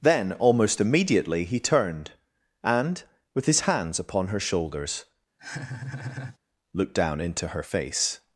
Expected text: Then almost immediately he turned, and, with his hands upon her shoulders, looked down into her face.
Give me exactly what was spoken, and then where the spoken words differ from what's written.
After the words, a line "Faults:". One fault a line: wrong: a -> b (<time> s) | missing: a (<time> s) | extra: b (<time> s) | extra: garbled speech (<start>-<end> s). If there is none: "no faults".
Then almost immediately he turned, and, with his hands upon her shoulders, looked down into her face.
Faults:
no faults